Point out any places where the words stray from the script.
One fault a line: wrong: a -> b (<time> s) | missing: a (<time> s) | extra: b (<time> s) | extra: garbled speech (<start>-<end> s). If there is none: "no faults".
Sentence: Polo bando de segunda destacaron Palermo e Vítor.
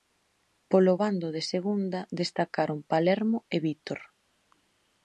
no faults